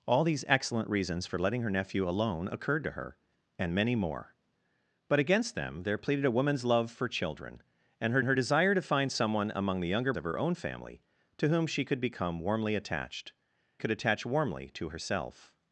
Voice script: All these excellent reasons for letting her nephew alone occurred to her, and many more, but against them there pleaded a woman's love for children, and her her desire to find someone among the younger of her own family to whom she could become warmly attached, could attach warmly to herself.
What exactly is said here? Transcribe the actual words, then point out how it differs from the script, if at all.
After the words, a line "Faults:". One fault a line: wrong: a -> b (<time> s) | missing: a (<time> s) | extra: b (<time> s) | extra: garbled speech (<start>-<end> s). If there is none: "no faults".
All these excellent reasons for letting her nephew alone occurred to her, and many more, but against them there pleaded a woman's love for children, and her her desire to find someone among the younger of her own family to whom she could become warmly attached, could attach warmly to herself.
Faults:
no faults